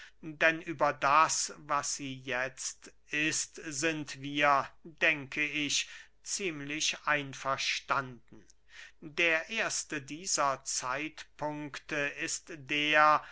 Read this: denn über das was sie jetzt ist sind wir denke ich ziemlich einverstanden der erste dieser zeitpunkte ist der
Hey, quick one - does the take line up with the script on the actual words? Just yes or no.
yes